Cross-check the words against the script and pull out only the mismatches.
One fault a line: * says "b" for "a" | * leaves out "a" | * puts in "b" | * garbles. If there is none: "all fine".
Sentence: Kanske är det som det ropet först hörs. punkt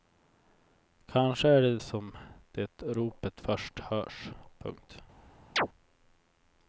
all fine